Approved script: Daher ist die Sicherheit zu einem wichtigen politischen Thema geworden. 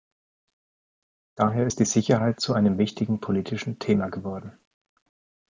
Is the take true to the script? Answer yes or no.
yes